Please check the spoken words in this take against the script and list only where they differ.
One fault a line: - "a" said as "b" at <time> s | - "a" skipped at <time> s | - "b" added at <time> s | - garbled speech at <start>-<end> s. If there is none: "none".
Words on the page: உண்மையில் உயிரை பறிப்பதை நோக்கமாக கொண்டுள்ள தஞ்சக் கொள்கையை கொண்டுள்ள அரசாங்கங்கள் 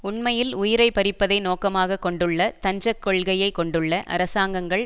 none